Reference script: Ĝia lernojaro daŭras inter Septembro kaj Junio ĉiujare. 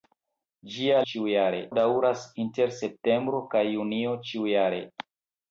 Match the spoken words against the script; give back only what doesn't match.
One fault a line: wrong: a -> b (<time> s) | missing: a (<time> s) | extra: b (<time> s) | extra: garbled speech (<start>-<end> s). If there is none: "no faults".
wrong: lernojaro -> ĉiujare (1.1 s)